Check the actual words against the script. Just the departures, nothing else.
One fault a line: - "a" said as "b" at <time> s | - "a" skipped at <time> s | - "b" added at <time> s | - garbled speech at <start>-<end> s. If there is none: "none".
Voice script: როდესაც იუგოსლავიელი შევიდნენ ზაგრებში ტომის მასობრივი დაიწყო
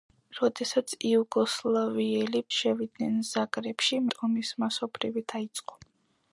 none